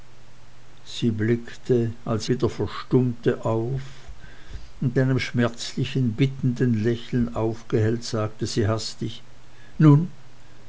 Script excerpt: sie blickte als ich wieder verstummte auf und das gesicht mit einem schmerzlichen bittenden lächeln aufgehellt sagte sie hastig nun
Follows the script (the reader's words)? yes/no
no